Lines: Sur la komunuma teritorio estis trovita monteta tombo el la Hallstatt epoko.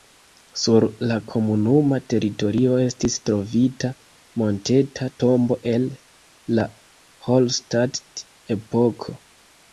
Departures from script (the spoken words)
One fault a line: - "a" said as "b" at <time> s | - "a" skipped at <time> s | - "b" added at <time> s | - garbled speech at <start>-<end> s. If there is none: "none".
none